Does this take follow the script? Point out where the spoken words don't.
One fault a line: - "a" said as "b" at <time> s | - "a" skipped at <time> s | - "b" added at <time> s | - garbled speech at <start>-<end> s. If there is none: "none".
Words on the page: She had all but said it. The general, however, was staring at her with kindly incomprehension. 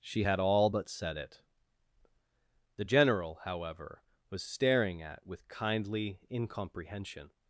- "her" skipped at 5.3 s